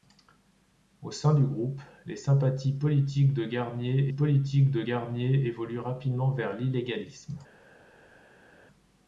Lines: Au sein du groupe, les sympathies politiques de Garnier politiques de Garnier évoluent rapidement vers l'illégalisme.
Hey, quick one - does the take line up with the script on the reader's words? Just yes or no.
yes